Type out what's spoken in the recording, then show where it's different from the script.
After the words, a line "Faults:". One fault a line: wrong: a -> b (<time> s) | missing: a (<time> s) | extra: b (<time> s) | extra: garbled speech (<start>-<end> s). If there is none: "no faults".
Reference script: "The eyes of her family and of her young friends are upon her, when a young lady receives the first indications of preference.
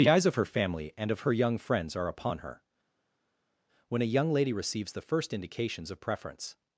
"The eyes of her family and of her young friends are upon her, when a young lady receives the first indications of preference.
Faults:
no faults